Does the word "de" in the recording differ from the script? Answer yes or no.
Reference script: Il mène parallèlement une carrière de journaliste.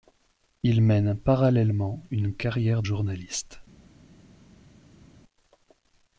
yes